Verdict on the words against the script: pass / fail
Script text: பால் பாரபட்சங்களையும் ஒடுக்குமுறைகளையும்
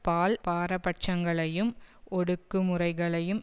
pass